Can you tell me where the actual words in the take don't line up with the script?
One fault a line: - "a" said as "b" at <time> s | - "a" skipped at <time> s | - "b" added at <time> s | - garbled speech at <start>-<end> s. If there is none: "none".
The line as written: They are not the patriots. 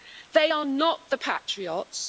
none